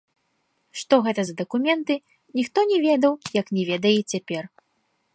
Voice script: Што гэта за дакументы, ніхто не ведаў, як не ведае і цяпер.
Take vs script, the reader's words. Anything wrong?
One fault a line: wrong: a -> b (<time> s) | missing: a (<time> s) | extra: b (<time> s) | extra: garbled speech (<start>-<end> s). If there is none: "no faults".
no faults